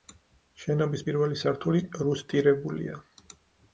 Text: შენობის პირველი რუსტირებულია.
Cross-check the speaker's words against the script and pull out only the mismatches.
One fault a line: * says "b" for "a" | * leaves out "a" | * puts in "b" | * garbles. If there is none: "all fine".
* puts in "სართული"